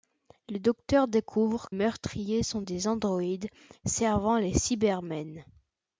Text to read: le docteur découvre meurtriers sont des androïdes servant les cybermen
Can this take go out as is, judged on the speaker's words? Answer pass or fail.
pass